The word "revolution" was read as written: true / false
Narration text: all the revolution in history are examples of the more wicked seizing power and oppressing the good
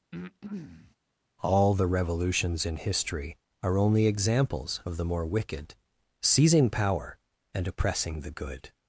false